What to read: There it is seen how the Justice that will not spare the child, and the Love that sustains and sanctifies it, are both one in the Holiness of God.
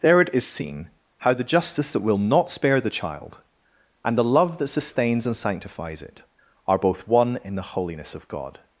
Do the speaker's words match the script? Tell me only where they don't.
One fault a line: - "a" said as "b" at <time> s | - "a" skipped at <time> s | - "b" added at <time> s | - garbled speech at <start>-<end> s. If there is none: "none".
none